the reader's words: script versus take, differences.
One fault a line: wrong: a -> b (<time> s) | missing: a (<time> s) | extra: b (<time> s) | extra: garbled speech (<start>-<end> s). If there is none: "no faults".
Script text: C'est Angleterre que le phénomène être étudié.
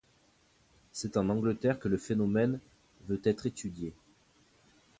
extra: en (1.1 s)
extra: veut (3.1 s)